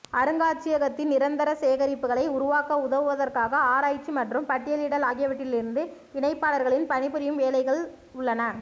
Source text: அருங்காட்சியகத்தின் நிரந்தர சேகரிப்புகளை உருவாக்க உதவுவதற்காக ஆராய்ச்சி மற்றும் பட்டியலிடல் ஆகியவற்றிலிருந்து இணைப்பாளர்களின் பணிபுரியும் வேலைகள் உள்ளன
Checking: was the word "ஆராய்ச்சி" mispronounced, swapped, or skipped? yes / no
no